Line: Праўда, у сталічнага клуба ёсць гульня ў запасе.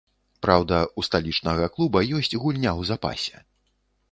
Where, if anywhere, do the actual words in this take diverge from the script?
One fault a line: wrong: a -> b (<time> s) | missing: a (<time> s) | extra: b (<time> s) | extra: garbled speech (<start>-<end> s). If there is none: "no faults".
no faults